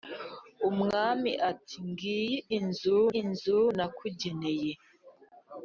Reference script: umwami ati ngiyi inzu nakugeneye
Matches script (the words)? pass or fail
fail